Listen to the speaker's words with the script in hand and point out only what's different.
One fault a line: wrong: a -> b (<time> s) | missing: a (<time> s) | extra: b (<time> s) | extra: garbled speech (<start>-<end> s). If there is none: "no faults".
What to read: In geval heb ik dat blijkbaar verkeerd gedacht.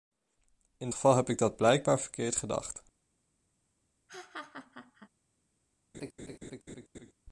no faults